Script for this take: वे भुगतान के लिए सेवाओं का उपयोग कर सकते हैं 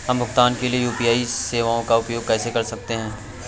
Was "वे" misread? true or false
true